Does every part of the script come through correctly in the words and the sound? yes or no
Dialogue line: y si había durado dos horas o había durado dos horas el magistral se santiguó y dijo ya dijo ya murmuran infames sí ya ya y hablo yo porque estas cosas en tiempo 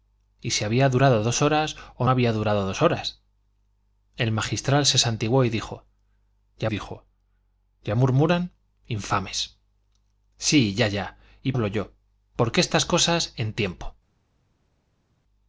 yes